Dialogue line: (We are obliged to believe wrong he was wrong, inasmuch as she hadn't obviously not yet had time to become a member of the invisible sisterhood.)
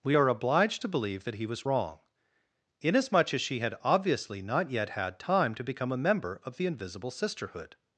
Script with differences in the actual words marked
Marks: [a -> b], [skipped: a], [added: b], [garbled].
(We are obliged to believe [wrong -> that] he was wrong, inasmuch as she [hadn't -> had] obviously not yet had time to become a member of the invisible sisterhood.)